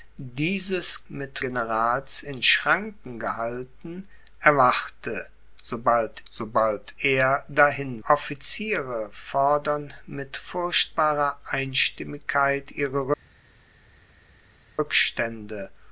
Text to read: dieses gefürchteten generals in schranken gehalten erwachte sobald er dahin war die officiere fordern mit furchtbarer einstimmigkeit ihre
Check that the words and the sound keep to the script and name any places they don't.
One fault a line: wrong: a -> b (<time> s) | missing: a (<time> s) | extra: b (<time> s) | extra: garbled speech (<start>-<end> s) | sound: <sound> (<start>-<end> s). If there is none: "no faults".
wrong: gefürchteten -> mit (1.1 s)
extra: sobald (6.3 s)
missing: war die (8.0 s)